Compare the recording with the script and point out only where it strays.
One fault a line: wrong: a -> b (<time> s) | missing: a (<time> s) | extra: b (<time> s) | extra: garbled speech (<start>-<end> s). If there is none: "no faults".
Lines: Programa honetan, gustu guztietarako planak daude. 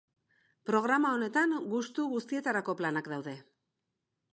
no faults